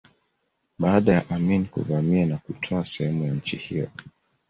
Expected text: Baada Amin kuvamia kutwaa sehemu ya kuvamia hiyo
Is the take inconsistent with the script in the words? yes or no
yes